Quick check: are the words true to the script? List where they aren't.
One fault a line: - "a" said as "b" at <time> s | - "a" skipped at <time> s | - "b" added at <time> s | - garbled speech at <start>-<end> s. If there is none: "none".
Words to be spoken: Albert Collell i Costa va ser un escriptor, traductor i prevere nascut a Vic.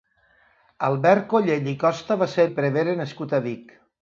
- "un escriptor traductor" skipped at 2.5 s